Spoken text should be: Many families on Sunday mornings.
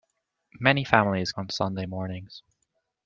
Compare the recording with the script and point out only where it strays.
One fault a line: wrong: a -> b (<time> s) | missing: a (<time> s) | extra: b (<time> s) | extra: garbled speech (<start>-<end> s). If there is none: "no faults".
no faults